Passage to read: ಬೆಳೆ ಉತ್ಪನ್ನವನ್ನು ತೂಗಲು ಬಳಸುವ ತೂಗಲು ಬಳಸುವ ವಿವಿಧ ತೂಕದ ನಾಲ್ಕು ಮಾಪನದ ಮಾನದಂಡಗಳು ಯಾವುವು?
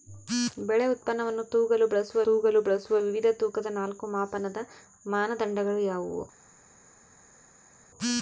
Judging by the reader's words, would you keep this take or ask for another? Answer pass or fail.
pass